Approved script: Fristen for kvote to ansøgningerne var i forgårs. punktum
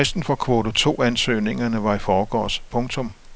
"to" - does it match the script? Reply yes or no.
yes